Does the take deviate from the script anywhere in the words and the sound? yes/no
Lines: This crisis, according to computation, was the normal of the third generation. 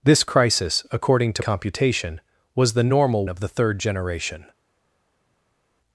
no